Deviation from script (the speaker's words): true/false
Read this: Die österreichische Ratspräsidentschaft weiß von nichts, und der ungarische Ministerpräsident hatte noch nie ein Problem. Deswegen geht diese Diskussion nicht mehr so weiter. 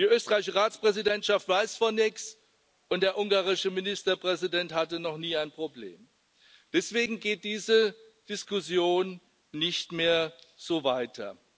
false